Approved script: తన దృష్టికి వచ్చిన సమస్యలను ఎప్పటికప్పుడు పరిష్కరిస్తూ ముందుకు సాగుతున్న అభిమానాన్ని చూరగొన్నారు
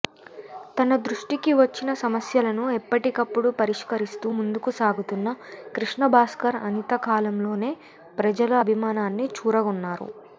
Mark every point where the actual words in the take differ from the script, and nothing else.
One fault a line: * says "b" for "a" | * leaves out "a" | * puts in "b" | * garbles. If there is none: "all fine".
* puts in "కృష్ణభాస్కర్ అనతికాలంలోనే ప్రజల"